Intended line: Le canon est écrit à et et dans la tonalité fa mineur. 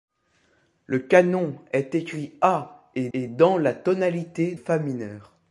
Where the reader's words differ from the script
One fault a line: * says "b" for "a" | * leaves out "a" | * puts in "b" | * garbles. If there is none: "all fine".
all fine